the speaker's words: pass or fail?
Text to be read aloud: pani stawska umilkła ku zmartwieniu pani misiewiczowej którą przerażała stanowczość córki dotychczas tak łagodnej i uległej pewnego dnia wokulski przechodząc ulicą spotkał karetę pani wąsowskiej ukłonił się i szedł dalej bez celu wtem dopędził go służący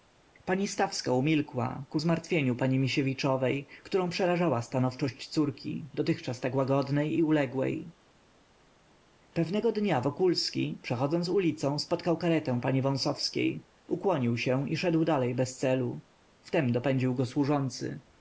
pass